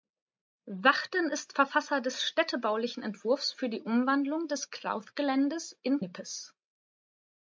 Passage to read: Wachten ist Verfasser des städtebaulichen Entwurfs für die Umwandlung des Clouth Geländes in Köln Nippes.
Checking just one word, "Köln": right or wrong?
wrong